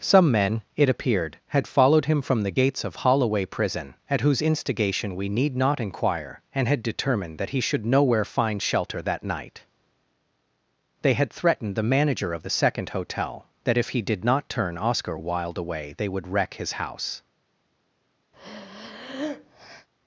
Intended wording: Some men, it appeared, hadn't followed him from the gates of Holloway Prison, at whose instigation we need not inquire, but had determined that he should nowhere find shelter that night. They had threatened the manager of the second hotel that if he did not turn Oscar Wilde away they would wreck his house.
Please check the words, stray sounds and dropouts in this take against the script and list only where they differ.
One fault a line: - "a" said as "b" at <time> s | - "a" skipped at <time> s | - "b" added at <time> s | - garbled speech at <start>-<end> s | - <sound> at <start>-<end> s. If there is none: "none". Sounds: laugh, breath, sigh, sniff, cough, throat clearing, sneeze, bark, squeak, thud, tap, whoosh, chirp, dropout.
- "hadn't" said as "had" at 1.5 s
- "but" said as "and" at 6.5 s
- breath at 18.3-19.9 s